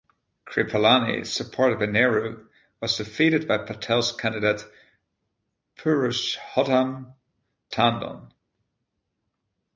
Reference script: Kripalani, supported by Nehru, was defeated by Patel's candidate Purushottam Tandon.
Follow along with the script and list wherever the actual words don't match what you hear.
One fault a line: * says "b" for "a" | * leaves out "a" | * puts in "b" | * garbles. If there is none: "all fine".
all fine